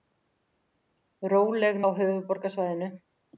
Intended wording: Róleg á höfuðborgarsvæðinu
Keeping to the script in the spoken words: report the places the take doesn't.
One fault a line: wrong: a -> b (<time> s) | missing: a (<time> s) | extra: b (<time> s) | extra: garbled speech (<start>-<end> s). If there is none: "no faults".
no faults